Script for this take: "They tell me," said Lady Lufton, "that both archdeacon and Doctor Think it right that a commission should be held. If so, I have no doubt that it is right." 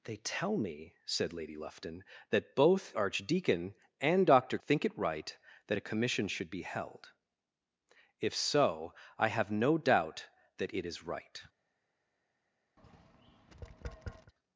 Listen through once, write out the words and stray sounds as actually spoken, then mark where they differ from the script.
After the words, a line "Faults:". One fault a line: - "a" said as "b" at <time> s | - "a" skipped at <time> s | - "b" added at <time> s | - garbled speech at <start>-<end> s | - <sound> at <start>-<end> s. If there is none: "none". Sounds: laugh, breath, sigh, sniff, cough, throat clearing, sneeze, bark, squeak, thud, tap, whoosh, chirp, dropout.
"They tell me," said Lady Lufton, "that both archdeacon and Doctor Think it right that a commission should be held. If so, I have no doubt that it is right."
Faults:
- tap at 12.8-14.3 s